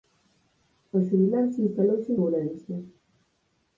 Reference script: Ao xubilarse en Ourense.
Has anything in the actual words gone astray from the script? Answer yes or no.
yes